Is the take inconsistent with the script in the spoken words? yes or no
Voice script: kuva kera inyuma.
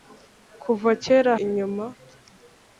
no